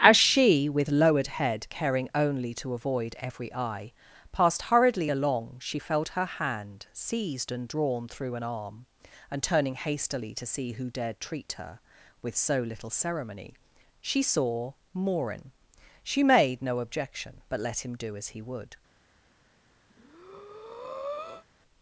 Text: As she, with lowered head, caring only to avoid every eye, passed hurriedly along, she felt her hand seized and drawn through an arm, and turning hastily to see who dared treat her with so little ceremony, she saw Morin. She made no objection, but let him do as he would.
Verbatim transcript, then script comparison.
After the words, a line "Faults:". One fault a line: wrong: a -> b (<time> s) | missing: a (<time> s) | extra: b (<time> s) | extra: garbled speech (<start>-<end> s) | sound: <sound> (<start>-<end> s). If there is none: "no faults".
As she, with lowered head, caring only to avoid every eye, passed hurriedly along, she felt her hand seized and drawn through an arm, and turning hastily to see who dared treat her with so little ceremony, she saw Morin. She made no objection, but let him do as he would.
Faults:
sound: breath (19.9-21.4 s)